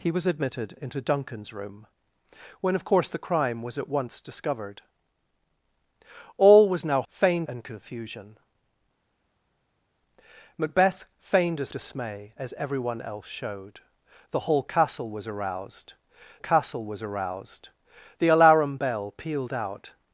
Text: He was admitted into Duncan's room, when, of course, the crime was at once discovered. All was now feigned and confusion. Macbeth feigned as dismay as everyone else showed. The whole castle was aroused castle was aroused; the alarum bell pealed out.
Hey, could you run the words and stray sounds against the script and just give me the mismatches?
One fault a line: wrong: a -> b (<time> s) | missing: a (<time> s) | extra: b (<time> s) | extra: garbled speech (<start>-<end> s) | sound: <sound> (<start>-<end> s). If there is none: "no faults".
no faults